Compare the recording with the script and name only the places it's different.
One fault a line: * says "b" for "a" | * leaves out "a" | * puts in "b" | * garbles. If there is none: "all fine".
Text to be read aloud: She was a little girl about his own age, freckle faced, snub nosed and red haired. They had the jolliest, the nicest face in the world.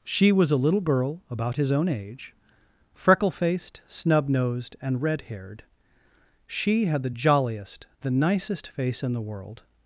* says "She" for "They"